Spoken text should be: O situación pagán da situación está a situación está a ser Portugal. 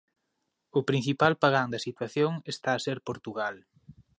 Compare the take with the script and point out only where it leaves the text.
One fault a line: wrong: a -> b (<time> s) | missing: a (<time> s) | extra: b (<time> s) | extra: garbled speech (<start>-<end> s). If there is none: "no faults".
wrong: situación -> principal (0.9 s)
missing: situación está a (2.8 s)